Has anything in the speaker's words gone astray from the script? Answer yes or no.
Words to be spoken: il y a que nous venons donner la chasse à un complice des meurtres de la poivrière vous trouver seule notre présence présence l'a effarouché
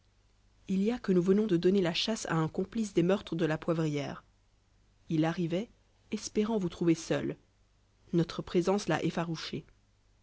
yes